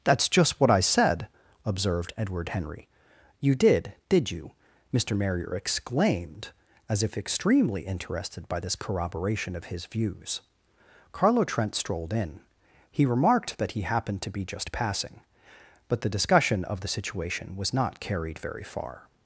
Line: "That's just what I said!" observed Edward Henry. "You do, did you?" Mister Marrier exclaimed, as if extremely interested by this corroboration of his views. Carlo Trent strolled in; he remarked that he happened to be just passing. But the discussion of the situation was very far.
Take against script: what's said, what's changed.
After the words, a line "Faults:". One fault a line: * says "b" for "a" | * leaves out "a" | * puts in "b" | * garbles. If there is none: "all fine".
"That's just what I said!" observed Edward Henry. "You did, did you?" Mister Marrier exclaimed, as if extremely interested by this corroboration of his views. Carlo Trent strolled in; he remarked that he happened to be just passing. But the discussion of the situation was not carried very far.
Faults:
* says "did" for "do"
* puts in "not carried"